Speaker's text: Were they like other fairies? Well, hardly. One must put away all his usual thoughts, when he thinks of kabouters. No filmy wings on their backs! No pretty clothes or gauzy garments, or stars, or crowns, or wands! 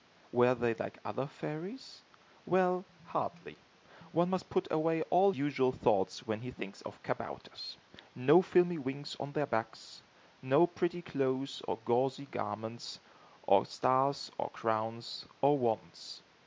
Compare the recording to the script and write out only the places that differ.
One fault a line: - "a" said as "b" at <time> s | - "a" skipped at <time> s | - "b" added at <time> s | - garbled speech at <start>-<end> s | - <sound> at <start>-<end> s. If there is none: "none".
- "his" skipped at 5.3 s